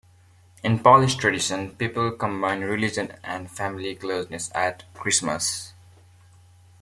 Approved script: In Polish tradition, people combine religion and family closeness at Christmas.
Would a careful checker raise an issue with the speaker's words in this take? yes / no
no